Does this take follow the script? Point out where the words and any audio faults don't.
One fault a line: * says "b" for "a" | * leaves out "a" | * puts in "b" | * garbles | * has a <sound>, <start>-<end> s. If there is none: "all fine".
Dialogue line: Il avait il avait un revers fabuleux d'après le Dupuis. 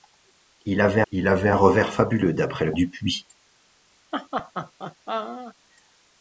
* has a laugh, 4.1-5.5 s